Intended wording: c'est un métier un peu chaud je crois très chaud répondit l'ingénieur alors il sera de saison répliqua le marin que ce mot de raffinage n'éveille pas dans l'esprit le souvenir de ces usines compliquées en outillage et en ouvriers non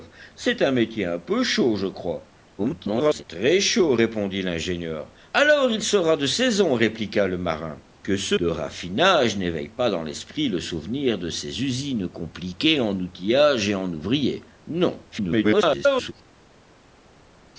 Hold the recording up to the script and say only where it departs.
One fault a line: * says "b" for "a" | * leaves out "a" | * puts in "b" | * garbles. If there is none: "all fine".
* garbles
* leaves out "mot"
* garbles